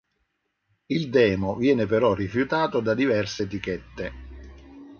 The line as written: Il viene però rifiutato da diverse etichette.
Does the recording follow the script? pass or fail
fail